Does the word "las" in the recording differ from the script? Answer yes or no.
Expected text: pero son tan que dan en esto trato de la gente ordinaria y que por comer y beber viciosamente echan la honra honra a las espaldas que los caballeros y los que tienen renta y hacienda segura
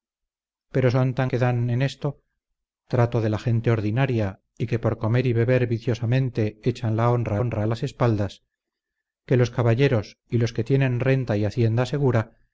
no